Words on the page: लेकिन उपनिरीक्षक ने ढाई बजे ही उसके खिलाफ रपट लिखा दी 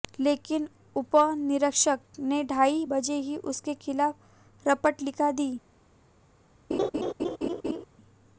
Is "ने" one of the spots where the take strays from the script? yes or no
no